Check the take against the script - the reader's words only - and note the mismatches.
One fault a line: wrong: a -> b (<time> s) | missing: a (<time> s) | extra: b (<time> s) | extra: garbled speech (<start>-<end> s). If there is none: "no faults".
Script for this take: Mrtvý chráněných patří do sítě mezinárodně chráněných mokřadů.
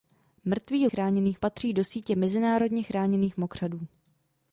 no faults